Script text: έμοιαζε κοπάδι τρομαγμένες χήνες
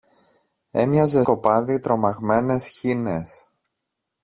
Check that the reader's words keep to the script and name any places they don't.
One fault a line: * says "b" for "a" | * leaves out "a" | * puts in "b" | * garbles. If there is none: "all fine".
all fine